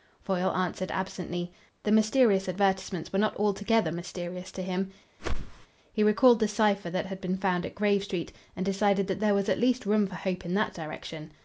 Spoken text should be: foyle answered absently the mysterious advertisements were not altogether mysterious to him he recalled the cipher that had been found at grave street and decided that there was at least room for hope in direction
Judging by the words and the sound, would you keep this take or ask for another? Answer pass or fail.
fail